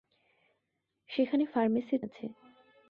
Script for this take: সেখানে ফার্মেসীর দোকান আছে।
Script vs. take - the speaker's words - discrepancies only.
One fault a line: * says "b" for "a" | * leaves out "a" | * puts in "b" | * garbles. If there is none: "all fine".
* leaves out "দোকান"